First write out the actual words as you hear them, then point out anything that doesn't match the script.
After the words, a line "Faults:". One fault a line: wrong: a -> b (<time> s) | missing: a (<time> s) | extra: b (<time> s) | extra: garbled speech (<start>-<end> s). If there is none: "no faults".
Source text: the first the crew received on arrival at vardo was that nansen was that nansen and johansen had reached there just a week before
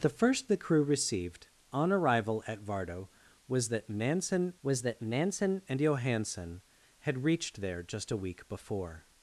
the first the crew received on arrival at vardo was that nansen was that nansen and johansen had reached there just a week before
Faults:
no faults